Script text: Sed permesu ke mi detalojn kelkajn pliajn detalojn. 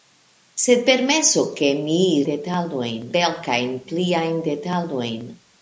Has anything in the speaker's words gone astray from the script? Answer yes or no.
no